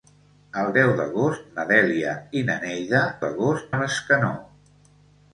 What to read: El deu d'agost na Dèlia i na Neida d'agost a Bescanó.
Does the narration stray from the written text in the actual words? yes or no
no